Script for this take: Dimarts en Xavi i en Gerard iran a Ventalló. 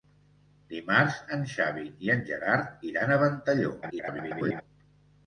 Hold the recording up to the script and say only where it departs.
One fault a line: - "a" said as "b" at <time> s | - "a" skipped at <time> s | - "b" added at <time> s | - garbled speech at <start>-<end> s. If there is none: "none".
- garbled speech at 3.8-4.6 s